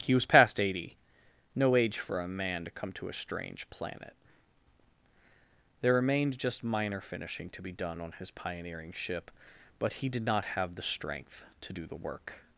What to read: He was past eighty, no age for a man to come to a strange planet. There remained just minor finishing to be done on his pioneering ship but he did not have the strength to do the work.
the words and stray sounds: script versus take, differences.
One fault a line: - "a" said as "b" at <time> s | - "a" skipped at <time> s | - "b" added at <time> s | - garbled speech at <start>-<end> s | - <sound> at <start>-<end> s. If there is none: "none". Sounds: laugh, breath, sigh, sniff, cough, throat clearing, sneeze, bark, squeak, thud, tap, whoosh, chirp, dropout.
none